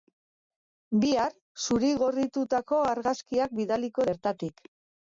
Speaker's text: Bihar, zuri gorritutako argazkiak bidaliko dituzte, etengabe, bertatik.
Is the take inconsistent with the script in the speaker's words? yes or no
yes